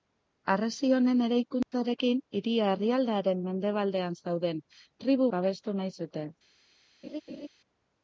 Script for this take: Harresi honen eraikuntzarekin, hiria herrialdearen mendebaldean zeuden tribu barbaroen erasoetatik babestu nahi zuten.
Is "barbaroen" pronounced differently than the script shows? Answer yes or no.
yes